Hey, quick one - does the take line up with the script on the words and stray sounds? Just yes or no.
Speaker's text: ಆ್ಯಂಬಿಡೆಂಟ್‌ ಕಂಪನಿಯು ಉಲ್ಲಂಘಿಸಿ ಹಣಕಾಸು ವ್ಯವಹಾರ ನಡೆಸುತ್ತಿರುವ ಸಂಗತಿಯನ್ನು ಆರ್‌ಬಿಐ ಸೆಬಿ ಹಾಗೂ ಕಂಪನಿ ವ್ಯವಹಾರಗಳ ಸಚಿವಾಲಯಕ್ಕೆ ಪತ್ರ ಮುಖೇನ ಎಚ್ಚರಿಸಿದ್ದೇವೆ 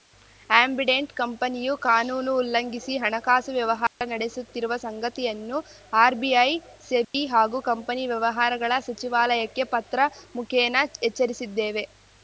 no